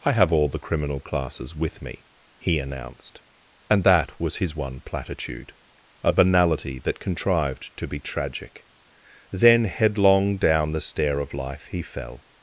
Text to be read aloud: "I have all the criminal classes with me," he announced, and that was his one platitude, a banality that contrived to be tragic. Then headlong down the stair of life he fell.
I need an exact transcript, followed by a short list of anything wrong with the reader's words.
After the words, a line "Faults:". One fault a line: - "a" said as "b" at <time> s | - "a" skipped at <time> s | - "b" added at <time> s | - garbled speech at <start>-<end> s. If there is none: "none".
"I have all the criminal classes with me," he announced, and that was his one platitude, a banality that contrived to be tragic. Then headlong down the stair of life he fell.
Faults:
none